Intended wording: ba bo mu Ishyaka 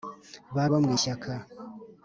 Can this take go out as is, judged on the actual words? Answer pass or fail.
pass